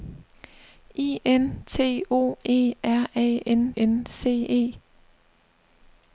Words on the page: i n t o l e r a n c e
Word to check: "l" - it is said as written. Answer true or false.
false